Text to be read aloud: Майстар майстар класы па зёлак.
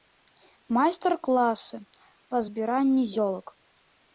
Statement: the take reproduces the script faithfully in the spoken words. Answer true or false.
false